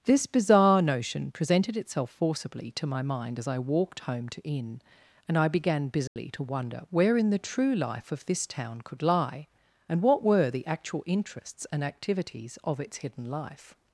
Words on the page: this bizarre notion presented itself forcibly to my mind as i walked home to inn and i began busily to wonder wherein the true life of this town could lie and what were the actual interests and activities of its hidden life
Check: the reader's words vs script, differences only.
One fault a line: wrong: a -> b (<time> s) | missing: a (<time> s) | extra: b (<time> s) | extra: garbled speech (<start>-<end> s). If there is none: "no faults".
no faults